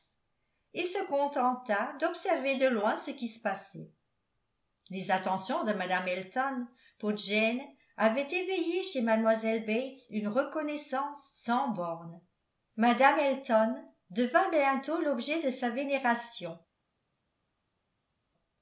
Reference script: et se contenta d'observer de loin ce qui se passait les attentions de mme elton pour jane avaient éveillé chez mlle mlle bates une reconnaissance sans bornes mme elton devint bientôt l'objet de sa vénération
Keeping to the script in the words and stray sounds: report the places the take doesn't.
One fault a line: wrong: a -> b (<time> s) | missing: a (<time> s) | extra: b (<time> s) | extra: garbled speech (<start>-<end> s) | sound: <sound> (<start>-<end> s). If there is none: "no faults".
missing: mlle (9.6 s)